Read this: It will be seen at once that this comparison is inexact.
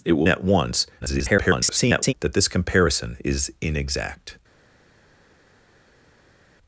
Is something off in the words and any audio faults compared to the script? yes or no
yes